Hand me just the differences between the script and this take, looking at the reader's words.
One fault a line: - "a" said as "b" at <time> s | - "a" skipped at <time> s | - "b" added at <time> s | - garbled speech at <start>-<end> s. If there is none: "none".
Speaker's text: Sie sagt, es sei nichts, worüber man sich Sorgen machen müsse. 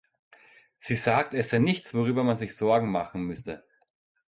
none